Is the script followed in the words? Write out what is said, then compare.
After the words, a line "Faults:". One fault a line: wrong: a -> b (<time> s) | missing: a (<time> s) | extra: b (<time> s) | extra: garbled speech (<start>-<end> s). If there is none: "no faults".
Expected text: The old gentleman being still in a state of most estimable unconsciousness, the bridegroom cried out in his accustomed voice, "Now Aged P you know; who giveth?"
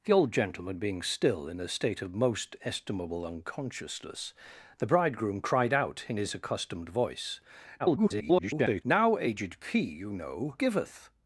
The old gentleman being still in a state of most estimable unconsciousness, the bridegroom cried out in his accustomed voice, [garbled] "Now Aged P you know; giveth?"
Faults:
extra: garbled speech (7.8-8.8 s)
missing: who (10.6 s)